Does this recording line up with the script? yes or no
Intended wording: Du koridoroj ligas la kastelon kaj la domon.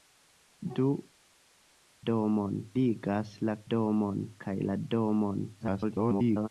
no